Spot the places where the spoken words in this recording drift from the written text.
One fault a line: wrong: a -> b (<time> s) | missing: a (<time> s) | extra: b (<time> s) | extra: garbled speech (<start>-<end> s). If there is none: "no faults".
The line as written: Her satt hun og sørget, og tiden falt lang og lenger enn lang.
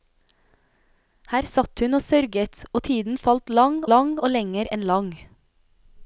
extra: lang (3.9 s)